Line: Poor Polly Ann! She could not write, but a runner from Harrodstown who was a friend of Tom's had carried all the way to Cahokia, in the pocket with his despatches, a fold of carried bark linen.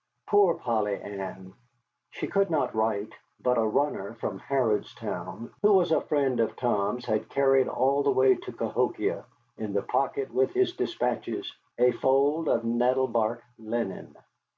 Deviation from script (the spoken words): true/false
true